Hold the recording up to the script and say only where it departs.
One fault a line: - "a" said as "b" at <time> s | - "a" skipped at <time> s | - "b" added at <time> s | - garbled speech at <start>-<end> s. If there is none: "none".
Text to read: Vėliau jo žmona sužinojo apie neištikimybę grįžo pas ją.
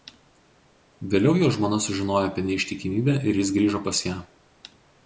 - "ir jis" added at 3.3 s